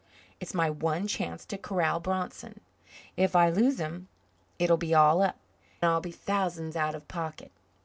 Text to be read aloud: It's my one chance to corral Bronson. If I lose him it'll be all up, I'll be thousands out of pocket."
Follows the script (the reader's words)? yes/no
yes